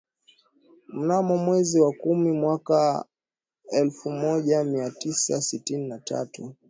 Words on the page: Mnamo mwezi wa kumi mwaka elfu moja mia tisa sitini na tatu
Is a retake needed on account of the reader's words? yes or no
no